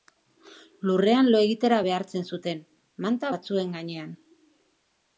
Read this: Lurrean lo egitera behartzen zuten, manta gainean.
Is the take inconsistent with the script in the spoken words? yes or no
yes